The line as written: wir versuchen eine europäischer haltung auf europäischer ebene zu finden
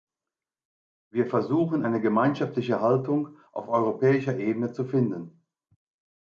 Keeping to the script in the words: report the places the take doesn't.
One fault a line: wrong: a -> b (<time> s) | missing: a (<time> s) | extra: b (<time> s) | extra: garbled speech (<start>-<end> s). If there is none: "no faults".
wrong: europäischer -> gemeinschaftliche (2.0 s)